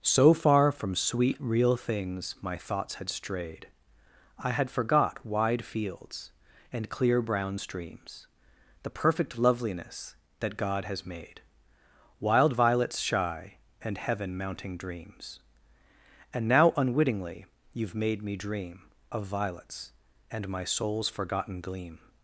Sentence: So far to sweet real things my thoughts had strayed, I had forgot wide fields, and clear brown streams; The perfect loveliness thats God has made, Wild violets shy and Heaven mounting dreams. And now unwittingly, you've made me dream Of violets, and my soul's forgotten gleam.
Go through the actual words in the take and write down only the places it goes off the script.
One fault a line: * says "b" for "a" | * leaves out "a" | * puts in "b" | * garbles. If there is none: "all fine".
* says "from" for "to"
* says "that" for "thats"